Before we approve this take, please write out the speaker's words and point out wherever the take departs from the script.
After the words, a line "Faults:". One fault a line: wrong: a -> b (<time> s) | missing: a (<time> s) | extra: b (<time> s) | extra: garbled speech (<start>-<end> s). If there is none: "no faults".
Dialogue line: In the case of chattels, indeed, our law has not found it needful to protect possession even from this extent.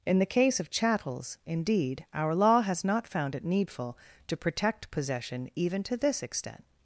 In the case of chattels, indeed, our law has not found it needful to protect possession even to this extent.
Faults:
wrong: from -> to (5.8 s)